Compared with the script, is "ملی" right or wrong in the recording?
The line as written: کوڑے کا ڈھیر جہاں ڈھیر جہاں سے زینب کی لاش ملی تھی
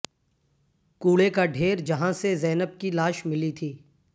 right